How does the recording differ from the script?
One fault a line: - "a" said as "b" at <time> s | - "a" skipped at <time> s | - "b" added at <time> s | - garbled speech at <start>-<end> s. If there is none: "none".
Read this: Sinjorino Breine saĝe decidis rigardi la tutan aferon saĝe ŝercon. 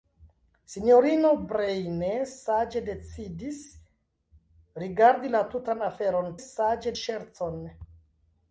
none